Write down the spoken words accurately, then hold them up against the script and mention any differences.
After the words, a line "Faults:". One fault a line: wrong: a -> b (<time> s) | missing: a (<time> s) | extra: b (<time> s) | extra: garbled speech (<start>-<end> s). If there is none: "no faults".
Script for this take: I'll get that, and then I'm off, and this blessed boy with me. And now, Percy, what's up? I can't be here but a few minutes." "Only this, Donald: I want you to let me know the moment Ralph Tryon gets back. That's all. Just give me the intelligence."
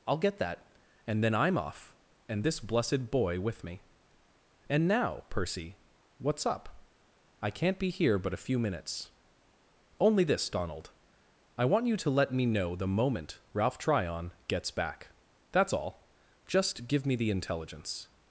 I'll get that, and then I'm off, and this blessed boy with me. And now, Percy, what's up? I can't be here but a few minutes." "Only this, Donald: I want you to let me know the moment Ralph Tryon gets back. That's all. Just give me the intelligence."
Faults:
no faults